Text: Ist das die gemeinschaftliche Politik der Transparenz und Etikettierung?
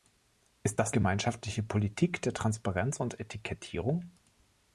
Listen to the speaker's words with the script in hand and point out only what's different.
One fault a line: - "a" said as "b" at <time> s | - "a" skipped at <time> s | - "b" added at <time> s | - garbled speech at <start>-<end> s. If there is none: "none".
- "die" skipped at 0.9 s